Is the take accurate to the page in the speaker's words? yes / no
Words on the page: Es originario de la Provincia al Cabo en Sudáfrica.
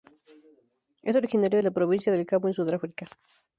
no